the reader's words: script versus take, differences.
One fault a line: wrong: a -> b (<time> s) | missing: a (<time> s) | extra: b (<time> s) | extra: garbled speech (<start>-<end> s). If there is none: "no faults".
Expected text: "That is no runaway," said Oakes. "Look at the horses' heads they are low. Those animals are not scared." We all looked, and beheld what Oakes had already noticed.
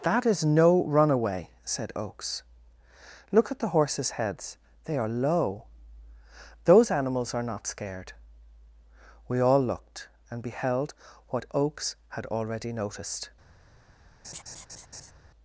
no faults